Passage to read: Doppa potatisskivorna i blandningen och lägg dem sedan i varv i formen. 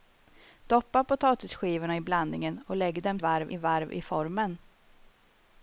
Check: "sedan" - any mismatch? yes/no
yes